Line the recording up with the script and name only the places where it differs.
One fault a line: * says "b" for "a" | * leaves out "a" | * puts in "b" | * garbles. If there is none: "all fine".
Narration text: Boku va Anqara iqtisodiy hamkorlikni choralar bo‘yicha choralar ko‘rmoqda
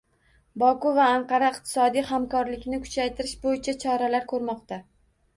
* says "kuchaytirish" for "choralar"